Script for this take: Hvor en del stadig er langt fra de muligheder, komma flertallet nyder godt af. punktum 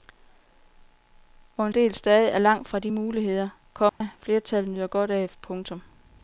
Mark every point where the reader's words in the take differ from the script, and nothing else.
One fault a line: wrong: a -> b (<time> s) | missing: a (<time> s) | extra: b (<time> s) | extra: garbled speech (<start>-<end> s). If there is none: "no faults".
no faults